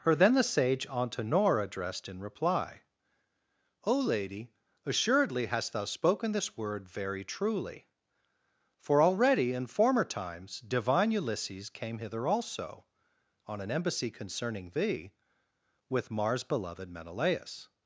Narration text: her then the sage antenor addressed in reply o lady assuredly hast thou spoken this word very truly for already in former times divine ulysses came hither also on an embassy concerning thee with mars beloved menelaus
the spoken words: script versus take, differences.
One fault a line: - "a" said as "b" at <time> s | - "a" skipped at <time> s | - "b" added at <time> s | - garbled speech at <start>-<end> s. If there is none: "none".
none